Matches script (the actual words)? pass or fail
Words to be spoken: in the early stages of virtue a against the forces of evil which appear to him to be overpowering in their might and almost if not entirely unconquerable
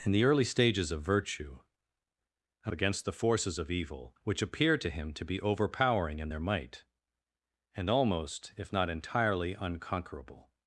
pass